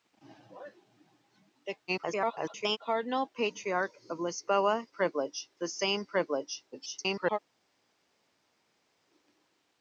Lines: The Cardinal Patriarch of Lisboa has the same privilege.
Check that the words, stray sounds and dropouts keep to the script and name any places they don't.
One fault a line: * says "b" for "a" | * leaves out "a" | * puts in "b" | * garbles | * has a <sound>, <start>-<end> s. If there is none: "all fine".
* garbles
* says "privilege" for "has"
* garbles